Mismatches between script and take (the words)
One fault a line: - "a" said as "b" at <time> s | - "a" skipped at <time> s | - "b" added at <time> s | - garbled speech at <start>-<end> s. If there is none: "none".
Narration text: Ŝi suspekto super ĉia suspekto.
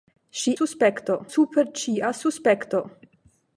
none